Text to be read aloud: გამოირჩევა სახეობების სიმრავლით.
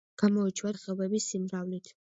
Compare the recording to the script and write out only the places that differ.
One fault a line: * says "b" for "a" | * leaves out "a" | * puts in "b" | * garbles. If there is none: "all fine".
all fine